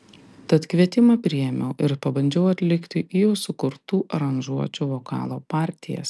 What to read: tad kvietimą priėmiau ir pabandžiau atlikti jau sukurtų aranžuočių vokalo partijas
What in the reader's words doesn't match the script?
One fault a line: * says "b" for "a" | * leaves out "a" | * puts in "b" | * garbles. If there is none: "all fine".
all fine